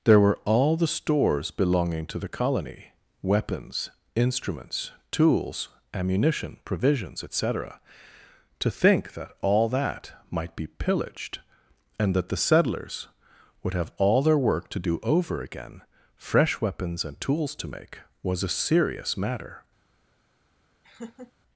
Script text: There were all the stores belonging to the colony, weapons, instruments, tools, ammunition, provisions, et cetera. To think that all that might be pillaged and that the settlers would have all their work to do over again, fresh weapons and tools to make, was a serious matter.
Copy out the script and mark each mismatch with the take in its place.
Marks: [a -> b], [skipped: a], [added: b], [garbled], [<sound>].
There were all the stores belonging to the colony, weapons, instruments, tools, ammunition, provisions, et cetera. To think that all that might be pillaged and that the settlers would have all their work to do over again, fresh weapons and tools to make, was a serious matter. [laugh]